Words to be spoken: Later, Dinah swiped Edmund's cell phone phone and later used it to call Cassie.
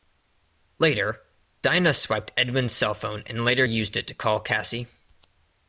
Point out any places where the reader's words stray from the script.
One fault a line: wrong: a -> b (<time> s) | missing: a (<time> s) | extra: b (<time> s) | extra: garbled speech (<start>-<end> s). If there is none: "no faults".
missing: phone (3.2 s)